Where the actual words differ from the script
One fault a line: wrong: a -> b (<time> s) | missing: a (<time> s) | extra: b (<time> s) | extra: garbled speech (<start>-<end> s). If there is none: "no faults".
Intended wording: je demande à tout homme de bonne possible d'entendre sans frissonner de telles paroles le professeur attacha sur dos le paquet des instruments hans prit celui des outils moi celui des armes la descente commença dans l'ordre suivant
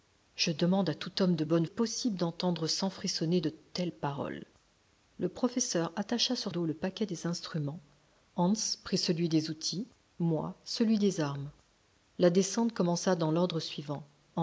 no faults